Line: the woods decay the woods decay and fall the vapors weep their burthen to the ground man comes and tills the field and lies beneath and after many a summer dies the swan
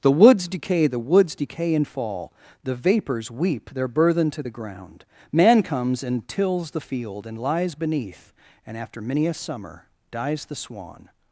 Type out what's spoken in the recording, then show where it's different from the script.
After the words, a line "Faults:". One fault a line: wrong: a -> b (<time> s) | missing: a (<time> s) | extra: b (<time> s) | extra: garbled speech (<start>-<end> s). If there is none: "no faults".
the woods decay the woods decay and fall the vapors weep their burthen to the ground man comes and tills the field and lies beneath and after many a summer dies the swan
Faults:
no faults